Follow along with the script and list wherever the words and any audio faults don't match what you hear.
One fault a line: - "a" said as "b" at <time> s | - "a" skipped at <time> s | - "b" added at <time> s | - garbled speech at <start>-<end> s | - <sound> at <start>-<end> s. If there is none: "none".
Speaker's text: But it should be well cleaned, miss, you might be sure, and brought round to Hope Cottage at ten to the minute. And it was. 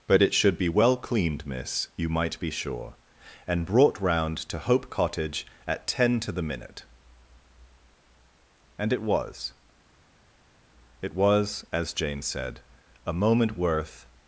- "It was as Jane said a moment worth" added at 11.0 s